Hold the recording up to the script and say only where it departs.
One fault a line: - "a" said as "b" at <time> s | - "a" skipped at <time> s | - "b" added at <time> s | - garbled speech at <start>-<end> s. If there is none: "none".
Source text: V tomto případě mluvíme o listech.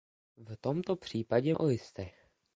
- "mluvíme" skipped at 1.6 s